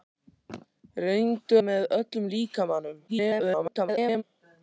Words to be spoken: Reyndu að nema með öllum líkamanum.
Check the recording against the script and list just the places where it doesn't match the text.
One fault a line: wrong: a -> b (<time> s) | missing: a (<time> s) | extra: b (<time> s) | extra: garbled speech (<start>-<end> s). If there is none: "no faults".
missing: að nema (1.6 s)
extra: garbled speech (3.1-4.2 s)